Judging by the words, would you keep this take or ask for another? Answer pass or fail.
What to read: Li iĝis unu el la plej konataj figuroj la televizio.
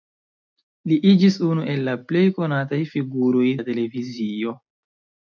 pass